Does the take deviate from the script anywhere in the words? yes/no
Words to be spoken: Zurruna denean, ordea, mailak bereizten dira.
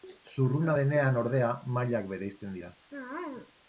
no